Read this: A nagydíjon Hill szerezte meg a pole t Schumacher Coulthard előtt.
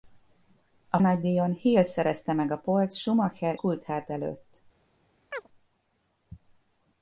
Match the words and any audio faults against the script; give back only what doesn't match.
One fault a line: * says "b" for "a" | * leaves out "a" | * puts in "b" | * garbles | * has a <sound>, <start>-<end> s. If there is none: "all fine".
* has a chirp, 5.3-5.5 s